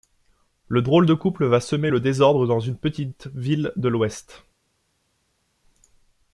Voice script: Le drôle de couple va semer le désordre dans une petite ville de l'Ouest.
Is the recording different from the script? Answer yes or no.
no